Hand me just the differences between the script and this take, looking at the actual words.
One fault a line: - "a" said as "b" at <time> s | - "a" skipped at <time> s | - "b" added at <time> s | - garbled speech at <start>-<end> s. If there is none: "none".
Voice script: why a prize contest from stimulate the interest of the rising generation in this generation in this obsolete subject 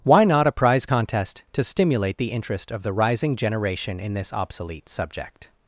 - "not" added at 0.2 s
- "from" said as "to" at 1.5 s
- "generation in this" skipped at 4.3 s